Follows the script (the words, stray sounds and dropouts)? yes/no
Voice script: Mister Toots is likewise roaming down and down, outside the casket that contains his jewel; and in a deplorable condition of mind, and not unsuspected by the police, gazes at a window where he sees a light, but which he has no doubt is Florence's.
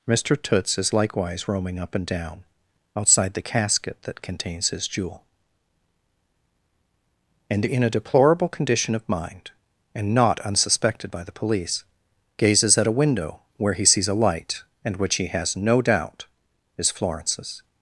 no